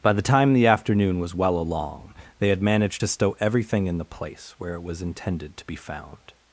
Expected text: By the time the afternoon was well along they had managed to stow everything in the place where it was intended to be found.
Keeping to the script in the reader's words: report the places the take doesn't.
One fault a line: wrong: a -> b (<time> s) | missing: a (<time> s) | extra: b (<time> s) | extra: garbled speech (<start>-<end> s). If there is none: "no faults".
no faults